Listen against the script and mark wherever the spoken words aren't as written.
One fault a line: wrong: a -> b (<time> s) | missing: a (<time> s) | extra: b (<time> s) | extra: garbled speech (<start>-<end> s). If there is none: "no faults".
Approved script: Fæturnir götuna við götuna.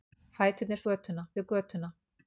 no faults